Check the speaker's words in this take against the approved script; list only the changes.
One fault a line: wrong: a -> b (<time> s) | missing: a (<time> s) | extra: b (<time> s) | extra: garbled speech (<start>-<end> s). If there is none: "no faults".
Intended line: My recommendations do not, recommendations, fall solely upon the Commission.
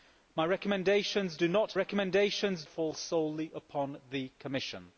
no faults